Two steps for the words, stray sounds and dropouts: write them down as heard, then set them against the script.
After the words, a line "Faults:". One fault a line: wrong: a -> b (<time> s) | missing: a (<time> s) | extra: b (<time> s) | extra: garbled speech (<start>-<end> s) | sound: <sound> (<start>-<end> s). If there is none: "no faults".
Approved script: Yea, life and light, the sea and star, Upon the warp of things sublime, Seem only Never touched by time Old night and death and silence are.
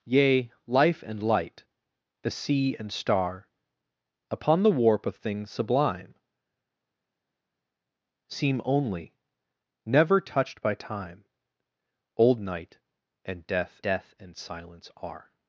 Yea, life and light, the sea and star, Upon the warp of things sublime, Seem only Never touched by time Old night and death death and silence are.
Faults:
extra: death (13.8 s)